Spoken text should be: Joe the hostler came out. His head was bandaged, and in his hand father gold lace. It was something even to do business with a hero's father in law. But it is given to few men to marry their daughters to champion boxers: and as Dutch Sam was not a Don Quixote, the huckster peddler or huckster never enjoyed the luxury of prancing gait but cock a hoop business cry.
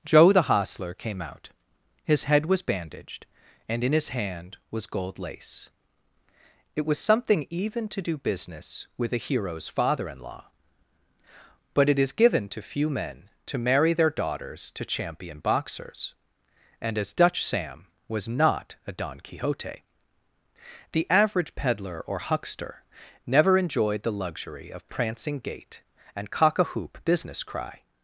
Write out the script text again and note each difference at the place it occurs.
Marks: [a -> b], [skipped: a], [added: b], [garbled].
Joe the hostler came out. His head was bandaged, and in his hand [father -> was] gold lace. It was something even to do business with a hero's father in law. But it is given to few men to marry their daughters to champion boxers: and as Dutch Sam was not a Don Quixote, the [huckster -> average] peddler or huckster never enjoyed the luxury of prancing gait [but -> and] cock a hoop business cry.